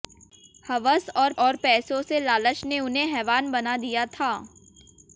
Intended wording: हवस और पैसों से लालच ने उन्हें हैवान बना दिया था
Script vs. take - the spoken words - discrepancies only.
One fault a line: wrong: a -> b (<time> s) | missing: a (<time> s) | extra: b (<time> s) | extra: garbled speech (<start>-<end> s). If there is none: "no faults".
extra: और (1.4 s)